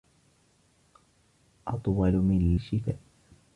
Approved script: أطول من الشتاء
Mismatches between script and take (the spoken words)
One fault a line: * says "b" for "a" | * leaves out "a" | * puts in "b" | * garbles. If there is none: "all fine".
all fine